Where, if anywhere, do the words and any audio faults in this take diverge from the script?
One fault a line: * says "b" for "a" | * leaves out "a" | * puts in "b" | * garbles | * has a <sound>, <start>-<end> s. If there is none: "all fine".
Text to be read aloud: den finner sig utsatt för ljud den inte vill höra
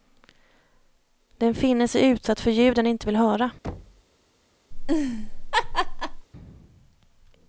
* has a thud, 3.6-4.0 s
* has a laugh, 4.7-6.3 s